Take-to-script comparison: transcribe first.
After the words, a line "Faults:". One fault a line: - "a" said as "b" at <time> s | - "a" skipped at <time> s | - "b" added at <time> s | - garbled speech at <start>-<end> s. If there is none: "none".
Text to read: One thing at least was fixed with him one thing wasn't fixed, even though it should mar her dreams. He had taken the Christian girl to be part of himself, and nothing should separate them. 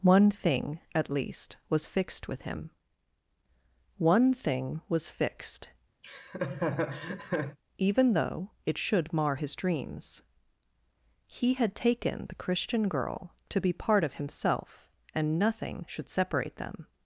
One thing at least was fixed with him one thing was fixed, even though it should mar his dreams. He had taken the Christian girl to be part of himself, and nothing should separate them.
Faults:
- "wasn't" said as "was" at 4.9 s
- "her" said as "his" at 9.4 s